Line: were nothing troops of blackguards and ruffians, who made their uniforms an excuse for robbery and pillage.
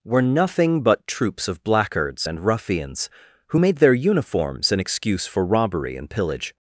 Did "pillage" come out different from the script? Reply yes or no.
no